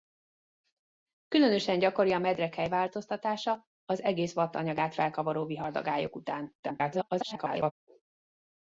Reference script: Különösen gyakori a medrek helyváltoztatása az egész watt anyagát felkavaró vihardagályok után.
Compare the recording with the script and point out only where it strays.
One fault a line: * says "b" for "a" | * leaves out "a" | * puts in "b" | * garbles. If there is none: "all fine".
* garbles